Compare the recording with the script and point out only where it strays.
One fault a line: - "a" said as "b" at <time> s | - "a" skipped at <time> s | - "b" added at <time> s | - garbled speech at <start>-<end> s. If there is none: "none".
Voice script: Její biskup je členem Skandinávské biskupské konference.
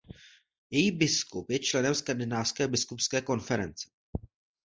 none